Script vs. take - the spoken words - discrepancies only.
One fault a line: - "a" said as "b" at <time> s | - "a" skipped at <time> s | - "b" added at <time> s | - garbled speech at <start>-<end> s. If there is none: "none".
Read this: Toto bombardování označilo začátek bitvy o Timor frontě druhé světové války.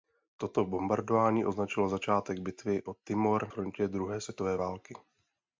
none